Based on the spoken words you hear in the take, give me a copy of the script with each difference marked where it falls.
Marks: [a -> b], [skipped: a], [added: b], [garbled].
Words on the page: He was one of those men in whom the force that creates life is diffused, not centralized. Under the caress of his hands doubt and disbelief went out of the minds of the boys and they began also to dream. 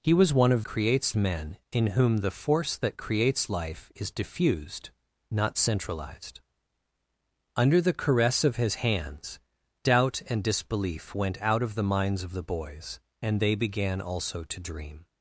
He was one of [those -> creates] men in whom the force that creates life is diffused, not centralized. Under the caress of his hands doubt and disbelief went out of the minds of the boys and they began also to dream.